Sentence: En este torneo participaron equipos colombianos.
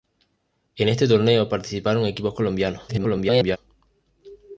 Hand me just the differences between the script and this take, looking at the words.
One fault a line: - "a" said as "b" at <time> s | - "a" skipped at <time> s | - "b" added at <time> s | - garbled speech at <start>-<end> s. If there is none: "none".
- garbled speech at 2.9-3.6 s